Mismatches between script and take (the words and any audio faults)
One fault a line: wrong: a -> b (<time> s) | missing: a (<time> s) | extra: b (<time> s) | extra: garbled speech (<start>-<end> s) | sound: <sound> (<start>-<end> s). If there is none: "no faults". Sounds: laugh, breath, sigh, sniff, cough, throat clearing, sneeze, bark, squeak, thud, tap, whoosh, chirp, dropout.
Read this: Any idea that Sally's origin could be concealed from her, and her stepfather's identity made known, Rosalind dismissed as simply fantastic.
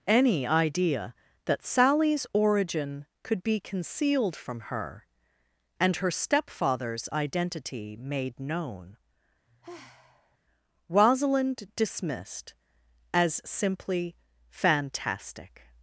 sound: sigh (9.5-10.4 s)